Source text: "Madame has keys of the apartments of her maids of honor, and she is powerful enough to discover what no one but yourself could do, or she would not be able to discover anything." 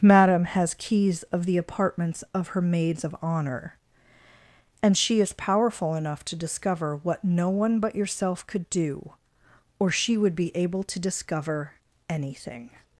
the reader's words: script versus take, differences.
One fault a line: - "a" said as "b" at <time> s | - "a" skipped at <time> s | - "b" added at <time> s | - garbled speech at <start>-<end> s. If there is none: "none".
- "not" skipped at 10.3 s